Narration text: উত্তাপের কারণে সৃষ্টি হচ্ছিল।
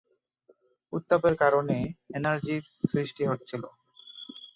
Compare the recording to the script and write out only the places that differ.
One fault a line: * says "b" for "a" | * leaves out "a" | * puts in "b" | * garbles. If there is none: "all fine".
* puts in "এনার্জির"